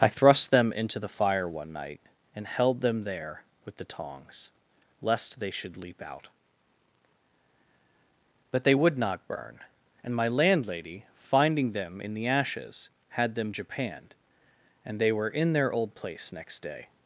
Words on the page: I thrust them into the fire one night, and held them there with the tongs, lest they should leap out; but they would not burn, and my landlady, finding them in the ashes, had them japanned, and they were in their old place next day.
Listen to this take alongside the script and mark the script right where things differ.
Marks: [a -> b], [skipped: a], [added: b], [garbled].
I thrust them into the fire one night, and held them there with the tongs, lest they should leap out; but they would not burn, and my landlady, finding them in the ashes, had them japanned, and they were in their old place next day.